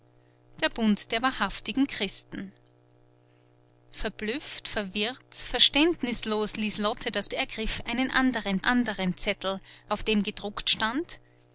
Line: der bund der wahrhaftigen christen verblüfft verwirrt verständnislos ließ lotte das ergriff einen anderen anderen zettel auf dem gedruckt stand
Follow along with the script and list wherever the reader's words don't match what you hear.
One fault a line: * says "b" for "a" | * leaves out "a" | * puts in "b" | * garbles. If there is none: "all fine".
all fine